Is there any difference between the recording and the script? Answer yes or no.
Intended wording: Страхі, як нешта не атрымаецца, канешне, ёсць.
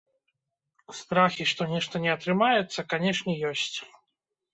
yes